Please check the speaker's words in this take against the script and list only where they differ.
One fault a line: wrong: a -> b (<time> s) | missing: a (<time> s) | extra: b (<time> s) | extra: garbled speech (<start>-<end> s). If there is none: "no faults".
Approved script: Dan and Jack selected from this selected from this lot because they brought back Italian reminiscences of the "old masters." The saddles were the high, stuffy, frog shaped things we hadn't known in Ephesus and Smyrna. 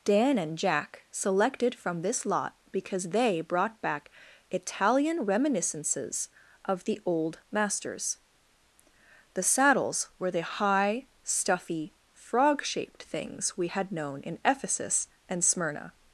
missing: selected from this (2.2 s)
wrong: hadn't -> had (13.7 s)